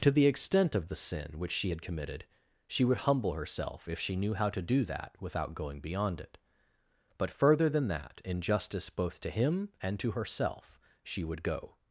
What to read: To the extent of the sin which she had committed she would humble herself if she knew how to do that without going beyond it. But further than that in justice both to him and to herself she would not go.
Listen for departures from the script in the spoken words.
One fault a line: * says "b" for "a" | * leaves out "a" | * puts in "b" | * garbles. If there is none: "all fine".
* leaves out "not"